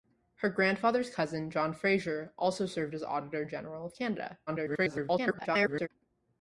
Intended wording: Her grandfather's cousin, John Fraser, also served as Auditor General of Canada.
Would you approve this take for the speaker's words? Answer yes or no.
no